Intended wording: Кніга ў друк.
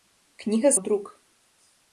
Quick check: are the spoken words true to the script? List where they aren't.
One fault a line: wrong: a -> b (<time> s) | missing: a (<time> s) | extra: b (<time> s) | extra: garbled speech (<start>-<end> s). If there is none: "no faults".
no faults